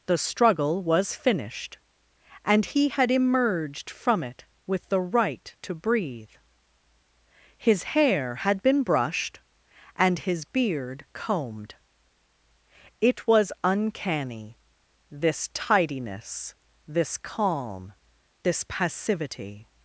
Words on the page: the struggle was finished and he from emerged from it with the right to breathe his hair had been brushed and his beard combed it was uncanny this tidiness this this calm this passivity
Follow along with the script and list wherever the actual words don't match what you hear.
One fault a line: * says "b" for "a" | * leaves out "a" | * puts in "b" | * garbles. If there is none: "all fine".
* says "had" for "from"
* leaves out "this"